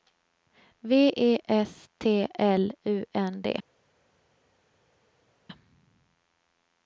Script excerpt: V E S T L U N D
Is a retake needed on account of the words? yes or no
no